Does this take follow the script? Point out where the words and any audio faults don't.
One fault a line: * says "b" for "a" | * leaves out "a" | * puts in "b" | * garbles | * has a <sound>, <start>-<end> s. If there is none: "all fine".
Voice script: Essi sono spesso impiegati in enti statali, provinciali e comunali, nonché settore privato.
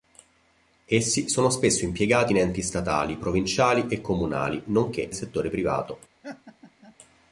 * has a laugh, 6.2-7.0 s